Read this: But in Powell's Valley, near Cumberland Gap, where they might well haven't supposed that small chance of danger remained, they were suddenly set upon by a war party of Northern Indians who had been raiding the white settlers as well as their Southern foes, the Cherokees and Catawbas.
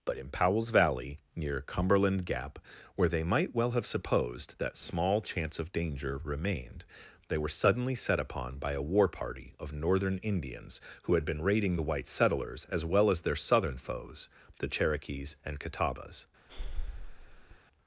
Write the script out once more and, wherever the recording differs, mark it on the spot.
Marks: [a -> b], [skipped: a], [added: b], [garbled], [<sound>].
But in Powell's Valley, near Cumberland Gap, where they might well [haven't -> have] supposed that small chance of danger remained, they were suddenly set upon by a war party of Northern Indians who had been raiding the white settlers as well as their Southern foes, the Cherokees and Catawbas. [breath]